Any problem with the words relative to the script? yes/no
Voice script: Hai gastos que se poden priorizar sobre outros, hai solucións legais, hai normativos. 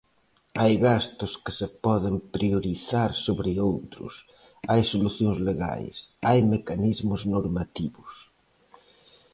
yes